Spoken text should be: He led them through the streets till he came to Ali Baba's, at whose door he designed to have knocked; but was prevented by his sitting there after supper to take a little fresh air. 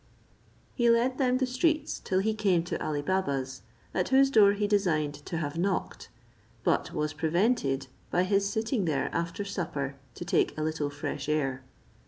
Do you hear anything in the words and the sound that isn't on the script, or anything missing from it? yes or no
yes